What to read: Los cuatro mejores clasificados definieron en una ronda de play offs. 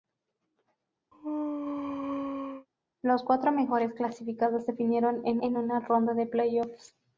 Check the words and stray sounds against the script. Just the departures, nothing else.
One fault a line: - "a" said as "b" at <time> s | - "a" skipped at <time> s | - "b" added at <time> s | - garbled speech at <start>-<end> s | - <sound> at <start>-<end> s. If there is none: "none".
- sneeze at 1.1-2.7 s
- "en" added at 5.4 s